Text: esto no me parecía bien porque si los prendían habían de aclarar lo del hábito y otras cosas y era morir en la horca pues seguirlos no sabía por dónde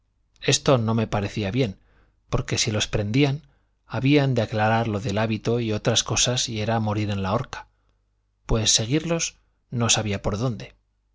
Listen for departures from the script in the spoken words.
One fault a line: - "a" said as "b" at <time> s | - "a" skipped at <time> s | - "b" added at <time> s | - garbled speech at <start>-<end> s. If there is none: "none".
none